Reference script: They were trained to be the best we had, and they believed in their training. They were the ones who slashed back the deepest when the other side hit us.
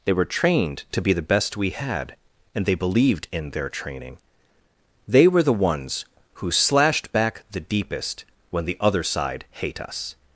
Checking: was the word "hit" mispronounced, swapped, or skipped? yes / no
yes